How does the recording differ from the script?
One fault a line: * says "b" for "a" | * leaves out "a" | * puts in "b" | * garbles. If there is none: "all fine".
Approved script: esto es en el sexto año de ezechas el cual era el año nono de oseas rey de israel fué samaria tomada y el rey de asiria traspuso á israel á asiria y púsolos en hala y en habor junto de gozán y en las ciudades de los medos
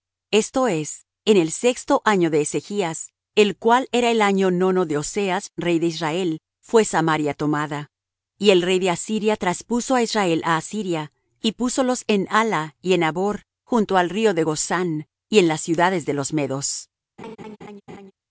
* puts in "al río"